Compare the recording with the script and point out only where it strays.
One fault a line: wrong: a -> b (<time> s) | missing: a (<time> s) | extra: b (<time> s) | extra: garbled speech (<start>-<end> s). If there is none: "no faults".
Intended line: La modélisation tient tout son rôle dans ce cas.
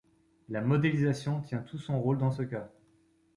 no faults